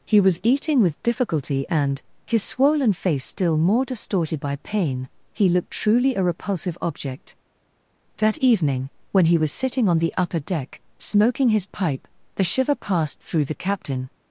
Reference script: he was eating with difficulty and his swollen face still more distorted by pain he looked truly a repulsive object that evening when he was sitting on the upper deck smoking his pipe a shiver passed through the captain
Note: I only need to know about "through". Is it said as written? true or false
true